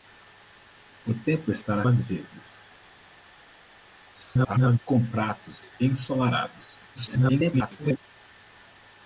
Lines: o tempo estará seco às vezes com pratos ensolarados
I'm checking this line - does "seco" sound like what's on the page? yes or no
no